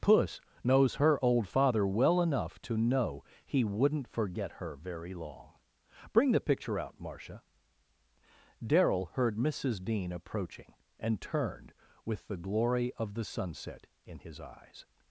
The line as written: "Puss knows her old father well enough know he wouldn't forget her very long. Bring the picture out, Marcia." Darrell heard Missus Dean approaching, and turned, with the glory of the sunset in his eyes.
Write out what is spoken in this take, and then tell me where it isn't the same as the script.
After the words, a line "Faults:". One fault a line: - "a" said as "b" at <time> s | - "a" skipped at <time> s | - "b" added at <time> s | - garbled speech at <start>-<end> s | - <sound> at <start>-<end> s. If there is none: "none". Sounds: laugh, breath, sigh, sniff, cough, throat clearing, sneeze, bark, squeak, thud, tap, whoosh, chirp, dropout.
"Puss knows her old father well enough to know he wouldn't forget her very long. Bring the picture out, Marcia." Darrell heard Missus Dean approaching, and turned, with the glory of the sunset in his eyes.
Faults:
- "to" added at 2.6 s